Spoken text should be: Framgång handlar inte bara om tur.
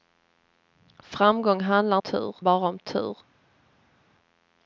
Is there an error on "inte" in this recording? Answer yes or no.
yes